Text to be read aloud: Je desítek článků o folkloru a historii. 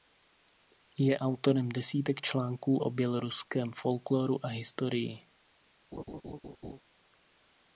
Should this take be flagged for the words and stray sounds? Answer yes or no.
yes